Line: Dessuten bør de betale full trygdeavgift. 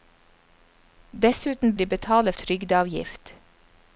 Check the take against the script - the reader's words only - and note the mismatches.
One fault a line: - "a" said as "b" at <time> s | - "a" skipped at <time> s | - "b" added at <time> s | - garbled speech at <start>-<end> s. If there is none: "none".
- "bør" skipped at 1.8 s
- "full" skipped at 2.3 s